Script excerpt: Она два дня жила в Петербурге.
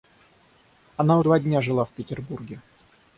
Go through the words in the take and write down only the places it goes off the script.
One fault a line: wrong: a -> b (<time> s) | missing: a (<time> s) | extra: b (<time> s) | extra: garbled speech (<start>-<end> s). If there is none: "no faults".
no faults